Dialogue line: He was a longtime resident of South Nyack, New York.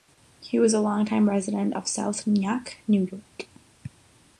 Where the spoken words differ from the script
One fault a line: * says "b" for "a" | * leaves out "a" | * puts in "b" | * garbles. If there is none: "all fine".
all fine